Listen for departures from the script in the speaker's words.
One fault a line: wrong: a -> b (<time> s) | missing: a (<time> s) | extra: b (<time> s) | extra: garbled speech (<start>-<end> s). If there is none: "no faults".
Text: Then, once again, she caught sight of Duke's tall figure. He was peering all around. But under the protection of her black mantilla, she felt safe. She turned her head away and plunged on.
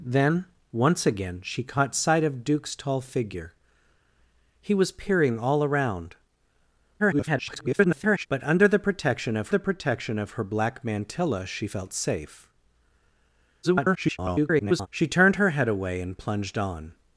extra: garbled speech (7.0-8.3 s)
extra: the protection of (9.5 s)
extra: garbled speech (13.6-14.9 s)